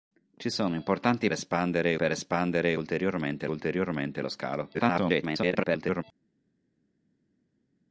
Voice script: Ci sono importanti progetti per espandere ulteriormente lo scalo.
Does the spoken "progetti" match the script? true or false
false